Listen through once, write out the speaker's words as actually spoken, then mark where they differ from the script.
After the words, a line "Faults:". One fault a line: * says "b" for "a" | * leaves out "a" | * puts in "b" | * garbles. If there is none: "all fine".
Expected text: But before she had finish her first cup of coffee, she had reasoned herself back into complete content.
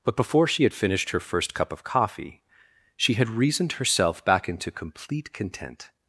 But before she had finished her first cup of coffee, she had reasoned herself back into complete content.
Faults:
* says "finished" for "finish"